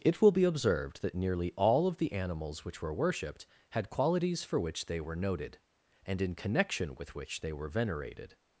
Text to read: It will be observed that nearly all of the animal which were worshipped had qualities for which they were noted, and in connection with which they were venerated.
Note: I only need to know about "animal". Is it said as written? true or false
false